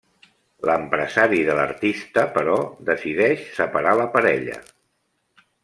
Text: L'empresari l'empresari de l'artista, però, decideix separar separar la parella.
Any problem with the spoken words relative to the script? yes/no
yes